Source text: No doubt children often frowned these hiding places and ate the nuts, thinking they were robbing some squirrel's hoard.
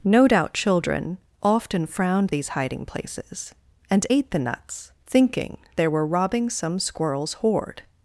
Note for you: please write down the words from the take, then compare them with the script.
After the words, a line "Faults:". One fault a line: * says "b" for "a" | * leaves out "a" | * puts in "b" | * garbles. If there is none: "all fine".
No doubt children often frowned these hiding places and ate the nuts, thinking they were robbing some squirrel's hoard.
Faults:
all fine